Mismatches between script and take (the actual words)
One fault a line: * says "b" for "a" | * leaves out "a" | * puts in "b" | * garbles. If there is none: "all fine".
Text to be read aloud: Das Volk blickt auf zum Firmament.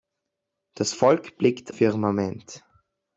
* leaves out "auf zum"